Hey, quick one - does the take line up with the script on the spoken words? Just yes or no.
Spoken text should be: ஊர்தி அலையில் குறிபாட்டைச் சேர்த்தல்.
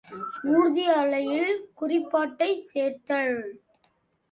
yes